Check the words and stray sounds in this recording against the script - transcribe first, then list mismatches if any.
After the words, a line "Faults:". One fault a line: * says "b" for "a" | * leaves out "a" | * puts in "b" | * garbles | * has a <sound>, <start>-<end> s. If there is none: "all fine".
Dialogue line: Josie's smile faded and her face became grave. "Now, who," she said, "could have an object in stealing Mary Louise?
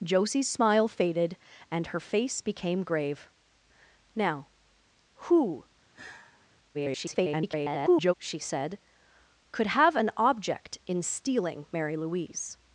Josie's smile faded and her face became grave. "Now, who," [garbled] she said, "could have an object in stealing Mary Louise?
Faults:
* has a sigh, 5.9-6.5 s
* garbles